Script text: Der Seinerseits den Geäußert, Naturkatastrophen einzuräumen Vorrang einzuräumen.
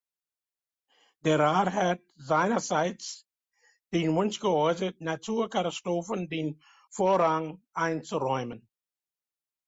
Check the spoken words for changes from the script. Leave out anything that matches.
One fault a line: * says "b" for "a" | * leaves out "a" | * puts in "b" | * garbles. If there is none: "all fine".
* puts in "Rat hat"
* puts in "Wunsch"
* says "den" for "einzuräumen"